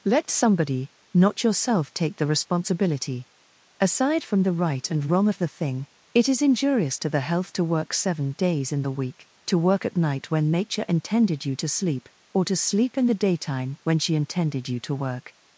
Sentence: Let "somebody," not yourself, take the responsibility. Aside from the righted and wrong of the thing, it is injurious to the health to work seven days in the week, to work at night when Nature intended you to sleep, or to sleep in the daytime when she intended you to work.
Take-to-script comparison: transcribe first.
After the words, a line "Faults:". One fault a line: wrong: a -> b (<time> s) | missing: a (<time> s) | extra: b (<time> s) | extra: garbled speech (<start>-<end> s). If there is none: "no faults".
Let "somebody," not yourself, take the responsibility. Aside from the right and wrong of the thing, it is injurious to the health to work seven days in the week, to work at night when Nature intended you to sleep, or to sleep in the daytime when she intended you to work.
Faults:
wrong: righted -> right (4.5 s)